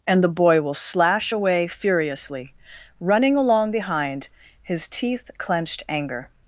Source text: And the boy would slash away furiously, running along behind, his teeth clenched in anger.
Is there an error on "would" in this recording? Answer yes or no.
yes